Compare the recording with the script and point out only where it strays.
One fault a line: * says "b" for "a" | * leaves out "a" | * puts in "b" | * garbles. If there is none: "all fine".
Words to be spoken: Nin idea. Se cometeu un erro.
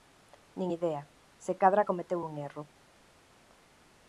* puts in "cadra"